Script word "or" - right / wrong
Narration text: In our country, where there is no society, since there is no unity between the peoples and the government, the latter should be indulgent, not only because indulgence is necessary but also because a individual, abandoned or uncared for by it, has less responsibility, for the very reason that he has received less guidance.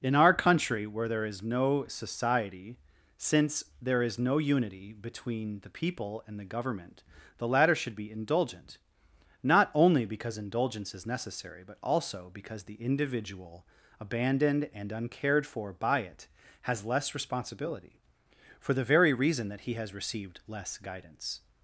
wrong